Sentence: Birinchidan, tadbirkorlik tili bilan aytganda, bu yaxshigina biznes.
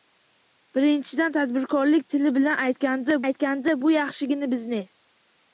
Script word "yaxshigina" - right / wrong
right